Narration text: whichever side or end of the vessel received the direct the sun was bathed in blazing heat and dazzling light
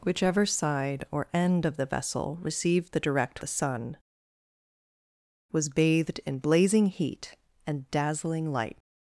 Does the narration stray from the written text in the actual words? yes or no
no